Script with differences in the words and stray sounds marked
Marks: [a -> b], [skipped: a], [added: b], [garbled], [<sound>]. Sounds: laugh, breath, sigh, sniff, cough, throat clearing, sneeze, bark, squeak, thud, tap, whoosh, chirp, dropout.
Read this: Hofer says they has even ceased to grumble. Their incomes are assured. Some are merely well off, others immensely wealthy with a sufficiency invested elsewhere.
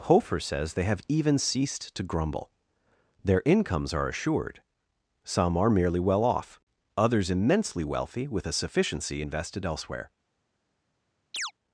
Hofer says they [has -> have] even ceased to grumble. Their incomes are assured. Some are merely well off, others immensely wealthy with a sufficiency invested elsewhere. [chirp]